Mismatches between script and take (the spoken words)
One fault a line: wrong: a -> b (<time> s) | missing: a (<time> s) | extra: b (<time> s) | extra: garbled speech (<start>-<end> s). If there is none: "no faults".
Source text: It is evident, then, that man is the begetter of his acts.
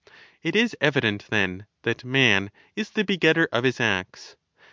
no faults